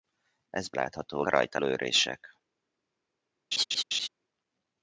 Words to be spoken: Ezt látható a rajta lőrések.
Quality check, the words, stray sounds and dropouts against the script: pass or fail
fail